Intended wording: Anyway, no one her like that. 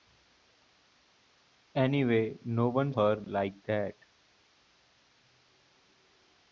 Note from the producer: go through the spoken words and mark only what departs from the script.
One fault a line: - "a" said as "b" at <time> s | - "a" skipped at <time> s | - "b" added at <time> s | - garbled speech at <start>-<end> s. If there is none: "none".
none